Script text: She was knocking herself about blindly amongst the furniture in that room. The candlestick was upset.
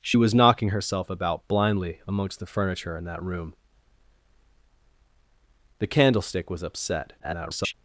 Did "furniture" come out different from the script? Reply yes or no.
no